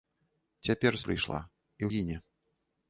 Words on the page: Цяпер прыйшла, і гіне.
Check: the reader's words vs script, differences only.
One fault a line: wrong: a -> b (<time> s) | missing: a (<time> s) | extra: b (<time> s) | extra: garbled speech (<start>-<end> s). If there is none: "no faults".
no faults